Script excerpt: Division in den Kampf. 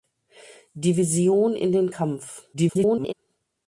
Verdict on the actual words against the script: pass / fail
fail